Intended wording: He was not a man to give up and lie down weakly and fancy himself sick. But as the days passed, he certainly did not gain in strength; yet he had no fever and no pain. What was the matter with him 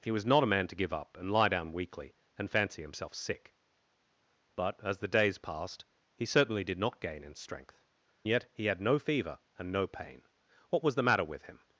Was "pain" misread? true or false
false